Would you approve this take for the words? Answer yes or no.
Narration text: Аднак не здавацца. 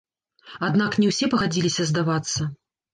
no